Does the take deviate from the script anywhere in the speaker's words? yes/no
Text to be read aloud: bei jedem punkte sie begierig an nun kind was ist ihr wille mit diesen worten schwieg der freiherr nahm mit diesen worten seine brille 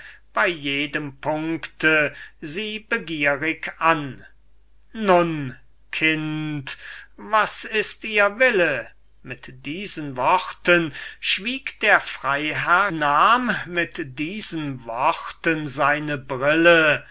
no